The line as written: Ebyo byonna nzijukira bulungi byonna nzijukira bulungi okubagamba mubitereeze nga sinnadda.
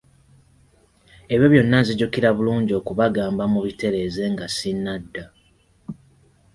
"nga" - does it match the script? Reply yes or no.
yes